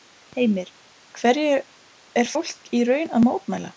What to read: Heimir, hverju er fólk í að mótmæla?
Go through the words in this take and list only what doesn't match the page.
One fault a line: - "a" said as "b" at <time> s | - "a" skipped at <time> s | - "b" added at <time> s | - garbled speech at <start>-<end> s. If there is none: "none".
- "raun" added at 2.9 s